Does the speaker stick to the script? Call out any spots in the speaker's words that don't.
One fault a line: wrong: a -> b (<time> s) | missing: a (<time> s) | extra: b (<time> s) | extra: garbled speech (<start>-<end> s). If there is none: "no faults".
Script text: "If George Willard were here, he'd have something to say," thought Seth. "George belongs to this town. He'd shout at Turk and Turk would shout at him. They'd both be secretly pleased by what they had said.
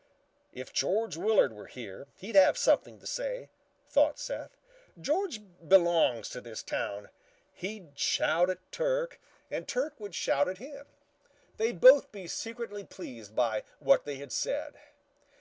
no faults